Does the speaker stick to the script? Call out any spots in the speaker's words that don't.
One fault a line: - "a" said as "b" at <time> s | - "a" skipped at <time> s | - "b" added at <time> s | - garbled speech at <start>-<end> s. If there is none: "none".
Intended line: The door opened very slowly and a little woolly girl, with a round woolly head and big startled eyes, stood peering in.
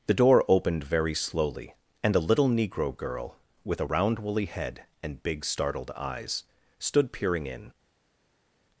- "woolly" said as "negro" at 2.5 s